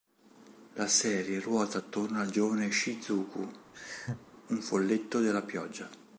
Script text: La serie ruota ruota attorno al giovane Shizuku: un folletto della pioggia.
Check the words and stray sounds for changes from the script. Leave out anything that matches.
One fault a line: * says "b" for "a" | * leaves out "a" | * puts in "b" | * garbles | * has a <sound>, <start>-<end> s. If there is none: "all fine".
* leaves out "ruota"
* has a laugh, 3.7-4.3 s